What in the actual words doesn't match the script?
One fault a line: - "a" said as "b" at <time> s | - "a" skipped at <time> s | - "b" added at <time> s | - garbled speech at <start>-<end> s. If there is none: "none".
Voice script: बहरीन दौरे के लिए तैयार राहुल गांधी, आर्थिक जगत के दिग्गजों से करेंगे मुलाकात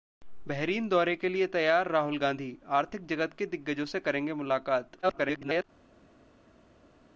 - garbled speech at 5.0-5.6 s